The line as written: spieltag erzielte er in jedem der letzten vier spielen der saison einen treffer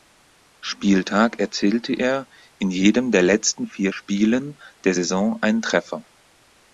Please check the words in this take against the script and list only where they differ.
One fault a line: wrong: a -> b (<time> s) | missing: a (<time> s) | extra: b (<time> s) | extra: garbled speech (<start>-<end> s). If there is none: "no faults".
no faults